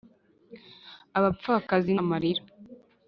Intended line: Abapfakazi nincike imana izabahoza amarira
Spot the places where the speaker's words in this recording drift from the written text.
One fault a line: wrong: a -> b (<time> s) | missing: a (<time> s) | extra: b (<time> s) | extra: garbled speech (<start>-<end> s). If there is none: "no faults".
missing: nincike imana izabahoza (1.9 s)